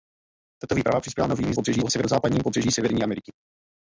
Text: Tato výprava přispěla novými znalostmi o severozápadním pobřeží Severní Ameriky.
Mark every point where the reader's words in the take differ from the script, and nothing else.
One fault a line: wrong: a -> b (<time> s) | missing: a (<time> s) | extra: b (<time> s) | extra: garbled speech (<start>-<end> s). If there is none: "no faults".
wrong: znalostmi -> pobřeží (1.5 s)